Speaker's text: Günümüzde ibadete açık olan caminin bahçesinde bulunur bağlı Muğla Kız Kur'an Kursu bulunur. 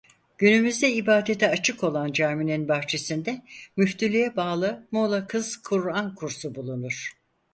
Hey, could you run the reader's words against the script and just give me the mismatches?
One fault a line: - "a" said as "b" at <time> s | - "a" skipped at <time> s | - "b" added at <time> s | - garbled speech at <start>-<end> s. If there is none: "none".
- "bulunur" said as "müftülüğe" at 3.8 s